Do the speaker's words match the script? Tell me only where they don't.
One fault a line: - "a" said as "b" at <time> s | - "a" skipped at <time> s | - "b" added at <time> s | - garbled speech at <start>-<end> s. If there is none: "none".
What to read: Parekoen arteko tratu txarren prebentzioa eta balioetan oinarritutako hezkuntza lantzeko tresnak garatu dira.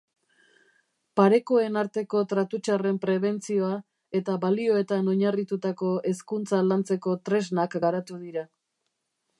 none